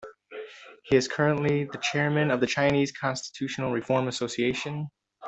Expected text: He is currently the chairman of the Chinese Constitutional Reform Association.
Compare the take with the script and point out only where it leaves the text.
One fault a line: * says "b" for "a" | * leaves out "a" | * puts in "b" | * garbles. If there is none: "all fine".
all fine